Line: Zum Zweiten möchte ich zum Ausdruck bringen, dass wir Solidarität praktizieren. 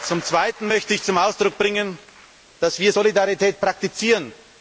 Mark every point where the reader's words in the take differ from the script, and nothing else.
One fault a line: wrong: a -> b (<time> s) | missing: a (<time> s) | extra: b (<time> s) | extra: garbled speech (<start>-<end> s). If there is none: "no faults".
no faults